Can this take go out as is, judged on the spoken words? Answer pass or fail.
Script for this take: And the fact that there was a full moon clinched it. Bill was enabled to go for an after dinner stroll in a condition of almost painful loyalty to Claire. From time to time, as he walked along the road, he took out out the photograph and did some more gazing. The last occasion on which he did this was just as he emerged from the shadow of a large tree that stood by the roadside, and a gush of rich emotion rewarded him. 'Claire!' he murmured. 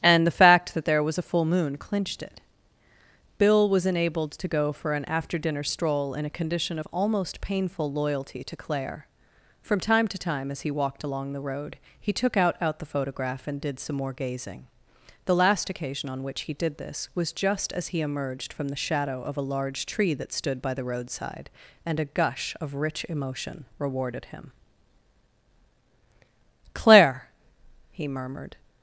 pass